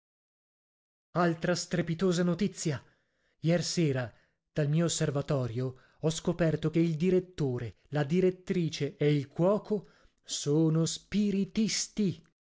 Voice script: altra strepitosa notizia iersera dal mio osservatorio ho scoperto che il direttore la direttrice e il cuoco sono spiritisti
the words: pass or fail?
pass